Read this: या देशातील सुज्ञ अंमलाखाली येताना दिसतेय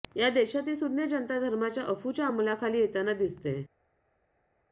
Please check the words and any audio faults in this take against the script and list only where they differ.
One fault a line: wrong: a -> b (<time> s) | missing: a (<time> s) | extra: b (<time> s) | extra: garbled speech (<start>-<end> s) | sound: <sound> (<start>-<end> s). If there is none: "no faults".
extra: जनता धर्माच्या अफूच्या (1.0 s)